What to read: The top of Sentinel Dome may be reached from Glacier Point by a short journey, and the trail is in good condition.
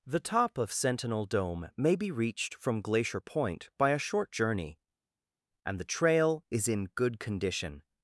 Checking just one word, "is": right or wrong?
right